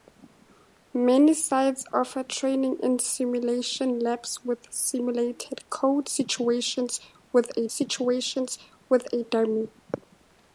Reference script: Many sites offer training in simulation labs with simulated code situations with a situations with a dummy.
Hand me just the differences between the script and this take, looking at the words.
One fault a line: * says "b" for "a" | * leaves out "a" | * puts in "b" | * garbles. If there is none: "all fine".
all fine